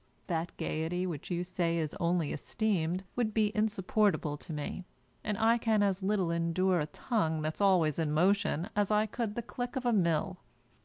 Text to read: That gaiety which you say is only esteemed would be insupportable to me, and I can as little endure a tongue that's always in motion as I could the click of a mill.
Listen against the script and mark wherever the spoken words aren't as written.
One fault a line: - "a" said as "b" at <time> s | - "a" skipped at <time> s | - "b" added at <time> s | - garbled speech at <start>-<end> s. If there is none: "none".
none